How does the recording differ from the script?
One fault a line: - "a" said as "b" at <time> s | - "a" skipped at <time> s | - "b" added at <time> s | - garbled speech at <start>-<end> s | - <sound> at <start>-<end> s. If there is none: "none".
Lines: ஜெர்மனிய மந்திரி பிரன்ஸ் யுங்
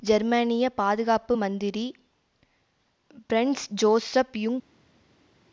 - "பாதுகாப்பு" added at 0.8 s
- "ஜோசப்" added at 3.8 s